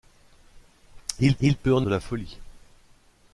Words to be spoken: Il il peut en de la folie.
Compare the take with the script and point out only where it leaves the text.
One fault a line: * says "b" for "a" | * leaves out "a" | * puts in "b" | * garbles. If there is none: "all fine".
all fine